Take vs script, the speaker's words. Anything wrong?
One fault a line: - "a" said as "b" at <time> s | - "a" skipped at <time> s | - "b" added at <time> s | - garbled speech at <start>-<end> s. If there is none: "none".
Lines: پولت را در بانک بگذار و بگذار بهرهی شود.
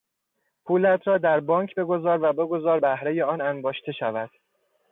- "آن انباشته" added at 3.2 s